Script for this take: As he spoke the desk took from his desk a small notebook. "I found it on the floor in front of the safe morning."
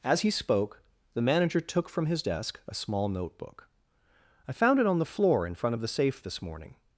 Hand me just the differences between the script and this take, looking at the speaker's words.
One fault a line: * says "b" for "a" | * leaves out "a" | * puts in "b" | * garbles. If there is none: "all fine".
* says "manager" for "desk"
* puts in "this"